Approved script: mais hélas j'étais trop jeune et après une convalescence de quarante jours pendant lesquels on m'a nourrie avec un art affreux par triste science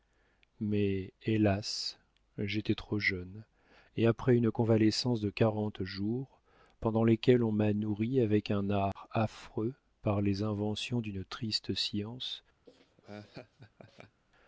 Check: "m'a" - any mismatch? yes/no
no